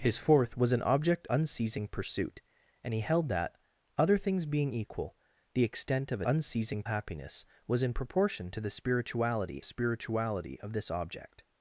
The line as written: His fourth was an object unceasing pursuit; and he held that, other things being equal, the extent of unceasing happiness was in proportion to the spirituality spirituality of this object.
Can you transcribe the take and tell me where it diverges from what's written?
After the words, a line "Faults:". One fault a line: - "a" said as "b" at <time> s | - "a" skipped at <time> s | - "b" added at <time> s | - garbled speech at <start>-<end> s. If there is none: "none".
His fourth was an object unceasing pursuit; and he held that, other things being equal, the extent of unceasing happiness was in proportion to the spirituality spirituality of this object.
Faults:
none